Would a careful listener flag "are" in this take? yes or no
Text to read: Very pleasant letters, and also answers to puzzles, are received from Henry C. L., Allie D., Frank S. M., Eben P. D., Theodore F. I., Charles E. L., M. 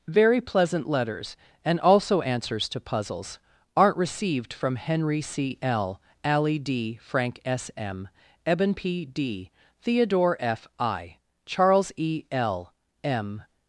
yes